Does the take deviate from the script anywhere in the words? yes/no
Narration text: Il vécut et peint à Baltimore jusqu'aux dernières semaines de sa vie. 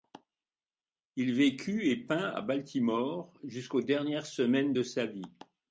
no